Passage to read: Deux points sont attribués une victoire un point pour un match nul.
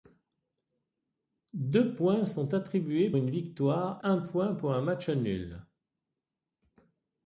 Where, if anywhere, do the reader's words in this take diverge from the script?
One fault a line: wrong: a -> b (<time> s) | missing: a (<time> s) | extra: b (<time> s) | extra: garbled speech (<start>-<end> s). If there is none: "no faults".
no faults